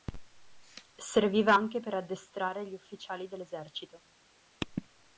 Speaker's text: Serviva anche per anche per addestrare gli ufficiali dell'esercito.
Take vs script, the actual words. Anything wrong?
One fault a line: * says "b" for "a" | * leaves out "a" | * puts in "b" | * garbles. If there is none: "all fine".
* leaves out "anche per"